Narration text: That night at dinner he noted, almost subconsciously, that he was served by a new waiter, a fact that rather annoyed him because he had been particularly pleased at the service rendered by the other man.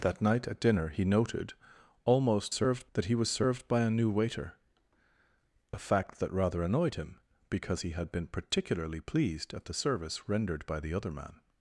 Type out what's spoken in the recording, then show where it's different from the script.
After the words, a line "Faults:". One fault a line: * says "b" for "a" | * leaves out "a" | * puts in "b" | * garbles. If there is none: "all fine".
That night at dinner he noted, almost served, that he was served by a new waiter, a fact that rather annoyed him because he had been particularly pleased at the service rendered by the other man.
Faults:
* says "served" for "subconsciously"